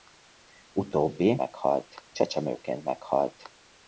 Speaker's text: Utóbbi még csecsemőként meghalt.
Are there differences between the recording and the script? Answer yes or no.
yes